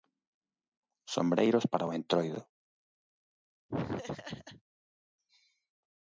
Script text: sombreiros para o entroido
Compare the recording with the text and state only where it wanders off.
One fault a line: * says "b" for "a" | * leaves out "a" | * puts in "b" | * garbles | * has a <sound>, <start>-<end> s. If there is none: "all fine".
* has a laugh, 3.7-4.6 s